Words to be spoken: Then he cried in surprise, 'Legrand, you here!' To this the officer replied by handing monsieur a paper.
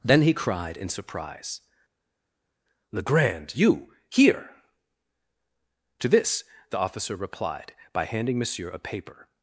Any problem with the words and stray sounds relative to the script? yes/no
no